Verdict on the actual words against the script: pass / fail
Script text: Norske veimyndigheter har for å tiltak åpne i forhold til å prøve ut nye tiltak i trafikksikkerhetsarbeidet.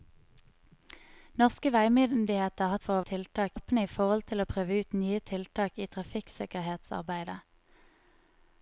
pass